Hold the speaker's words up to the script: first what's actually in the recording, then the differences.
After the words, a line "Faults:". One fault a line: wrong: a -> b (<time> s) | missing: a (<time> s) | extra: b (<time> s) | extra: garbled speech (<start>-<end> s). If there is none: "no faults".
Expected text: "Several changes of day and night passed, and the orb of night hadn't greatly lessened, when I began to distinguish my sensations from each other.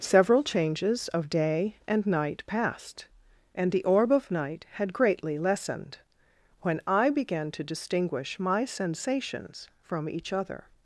"Several changes of day and night passed, and the orb of night had greatly lessened, when I began to distinguish my sensations from each other.
Faults:
wrong: hadn't -> had (4.7 s)